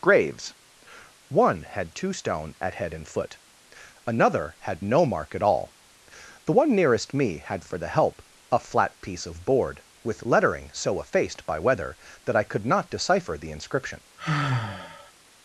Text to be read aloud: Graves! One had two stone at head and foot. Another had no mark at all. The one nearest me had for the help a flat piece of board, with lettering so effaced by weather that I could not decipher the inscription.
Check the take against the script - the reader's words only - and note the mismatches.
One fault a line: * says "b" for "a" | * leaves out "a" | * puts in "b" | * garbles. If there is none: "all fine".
all fine